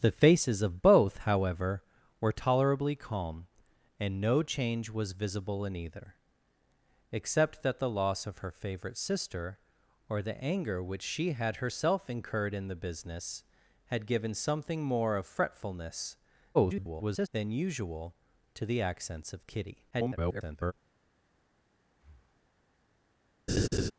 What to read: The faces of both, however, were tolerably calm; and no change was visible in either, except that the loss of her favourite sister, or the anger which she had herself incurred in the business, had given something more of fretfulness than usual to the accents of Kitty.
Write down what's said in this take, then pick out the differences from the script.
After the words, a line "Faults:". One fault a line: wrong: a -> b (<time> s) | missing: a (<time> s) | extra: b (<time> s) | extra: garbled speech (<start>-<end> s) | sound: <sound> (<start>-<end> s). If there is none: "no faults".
The faces of both, however, were tolerably calm; and no change was visible in either, except that the loss of her favourite sister, or the anger which she had herself incurred in the business, had given something more of fretfulness [garbled] than usual to the accents of Kitty. [garbled]
Faults:
extra: garbled speech (16.5-17.3 s)
extra: garbled speech (19.9-20.7 s)
sound: breath (21.9-22.6 s)
sound: laugh (23.5-23.9 s)